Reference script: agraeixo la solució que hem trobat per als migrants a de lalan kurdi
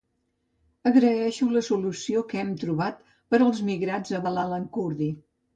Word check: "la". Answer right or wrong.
right